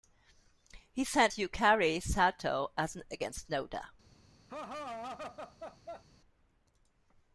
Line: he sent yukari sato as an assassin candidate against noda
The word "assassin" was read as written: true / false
false